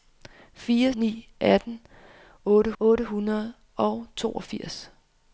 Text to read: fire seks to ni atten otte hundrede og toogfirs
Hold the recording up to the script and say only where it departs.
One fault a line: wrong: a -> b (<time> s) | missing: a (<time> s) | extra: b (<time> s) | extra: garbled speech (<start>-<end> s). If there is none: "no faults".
missing: seks to (0.9 s)
extra: otte (2.8 s)